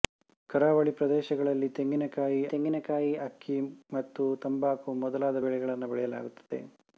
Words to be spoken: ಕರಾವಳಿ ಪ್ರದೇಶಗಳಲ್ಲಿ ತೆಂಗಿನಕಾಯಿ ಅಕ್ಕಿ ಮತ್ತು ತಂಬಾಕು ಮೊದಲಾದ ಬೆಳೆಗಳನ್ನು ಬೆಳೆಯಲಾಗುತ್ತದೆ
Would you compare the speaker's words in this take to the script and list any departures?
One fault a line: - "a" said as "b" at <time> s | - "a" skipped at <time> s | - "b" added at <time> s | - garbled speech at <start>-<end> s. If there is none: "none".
- "ತೆಂಗಿನಕಾಯಿ" added at 2.5 s